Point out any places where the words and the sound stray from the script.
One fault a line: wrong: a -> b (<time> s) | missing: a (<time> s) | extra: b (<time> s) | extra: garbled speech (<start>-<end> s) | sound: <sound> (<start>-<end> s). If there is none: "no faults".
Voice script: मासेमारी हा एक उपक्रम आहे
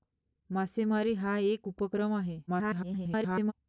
extra: garbled speech (2.5-3.5 s)